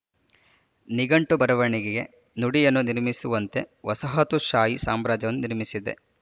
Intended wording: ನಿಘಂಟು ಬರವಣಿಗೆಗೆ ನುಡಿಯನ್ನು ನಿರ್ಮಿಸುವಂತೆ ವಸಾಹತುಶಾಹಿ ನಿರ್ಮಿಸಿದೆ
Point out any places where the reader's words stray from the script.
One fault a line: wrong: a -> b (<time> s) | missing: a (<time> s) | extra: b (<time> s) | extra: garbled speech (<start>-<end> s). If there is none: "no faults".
extra: ಸಾಮ್ರಾಜ್ಯವನ್ನು (4.9 s)